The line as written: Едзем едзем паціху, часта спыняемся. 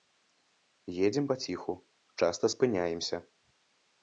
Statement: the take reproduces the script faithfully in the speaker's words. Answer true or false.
false